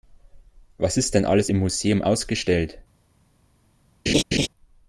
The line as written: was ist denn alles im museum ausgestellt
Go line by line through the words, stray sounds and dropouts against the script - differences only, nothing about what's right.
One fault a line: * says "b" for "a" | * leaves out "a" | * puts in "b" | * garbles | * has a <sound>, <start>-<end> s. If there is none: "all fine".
* has a laugh, 4.1-4.5 s